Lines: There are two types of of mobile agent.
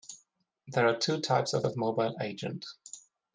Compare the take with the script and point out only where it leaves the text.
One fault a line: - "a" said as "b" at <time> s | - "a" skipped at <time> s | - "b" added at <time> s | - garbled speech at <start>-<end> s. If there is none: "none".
none